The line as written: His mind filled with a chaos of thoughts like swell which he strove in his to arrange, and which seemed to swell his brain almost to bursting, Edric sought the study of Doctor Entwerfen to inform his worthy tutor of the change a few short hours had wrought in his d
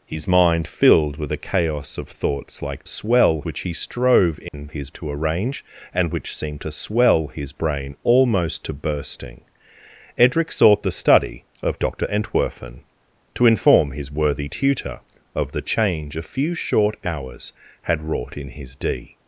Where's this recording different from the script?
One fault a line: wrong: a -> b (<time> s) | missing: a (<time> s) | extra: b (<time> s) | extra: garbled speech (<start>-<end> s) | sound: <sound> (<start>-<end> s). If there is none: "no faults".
sound: dropout (4.5-4.5 s)